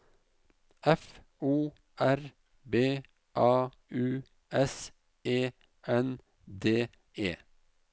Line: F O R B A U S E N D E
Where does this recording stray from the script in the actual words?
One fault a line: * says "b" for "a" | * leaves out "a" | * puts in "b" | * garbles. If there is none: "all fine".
all fine